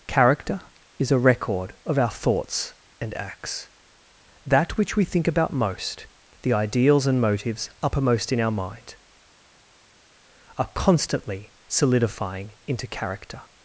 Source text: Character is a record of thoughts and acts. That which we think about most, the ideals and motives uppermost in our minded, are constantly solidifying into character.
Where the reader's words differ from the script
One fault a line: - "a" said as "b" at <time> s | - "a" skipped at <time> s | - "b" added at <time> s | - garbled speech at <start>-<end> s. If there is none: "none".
- "our" added at 2.0 s
- "minded" said as "mind" at 8.5 s